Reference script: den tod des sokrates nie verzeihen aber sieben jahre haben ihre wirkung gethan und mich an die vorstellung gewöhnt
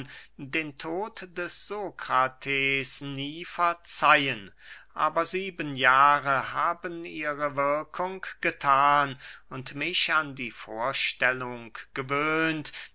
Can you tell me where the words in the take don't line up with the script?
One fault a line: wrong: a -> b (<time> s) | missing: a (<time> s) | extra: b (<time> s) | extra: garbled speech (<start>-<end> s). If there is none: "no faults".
no faults